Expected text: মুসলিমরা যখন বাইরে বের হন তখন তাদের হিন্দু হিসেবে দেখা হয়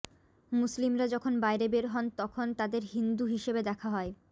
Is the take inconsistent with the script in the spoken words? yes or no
no